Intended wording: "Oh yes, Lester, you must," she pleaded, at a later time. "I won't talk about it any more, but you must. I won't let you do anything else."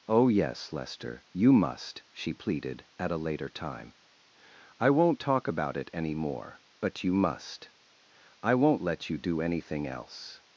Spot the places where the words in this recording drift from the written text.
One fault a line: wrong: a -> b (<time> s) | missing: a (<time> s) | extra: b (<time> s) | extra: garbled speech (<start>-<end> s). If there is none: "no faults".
no faults